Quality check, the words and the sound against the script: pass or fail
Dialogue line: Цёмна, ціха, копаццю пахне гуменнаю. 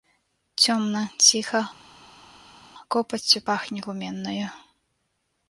pass